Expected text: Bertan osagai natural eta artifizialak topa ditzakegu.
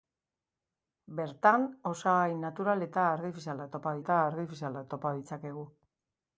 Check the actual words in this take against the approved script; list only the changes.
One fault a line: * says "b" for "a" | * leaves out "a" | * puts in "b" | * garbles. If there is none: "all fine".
* puts in "eta artifizialak topa"